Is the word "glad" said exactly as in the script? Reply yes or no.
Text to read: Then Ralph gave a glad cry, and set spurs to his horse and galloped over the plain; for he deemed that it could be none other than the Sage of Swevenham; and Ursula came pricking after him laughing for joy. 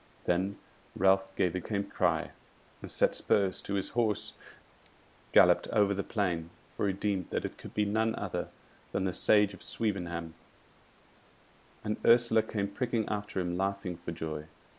no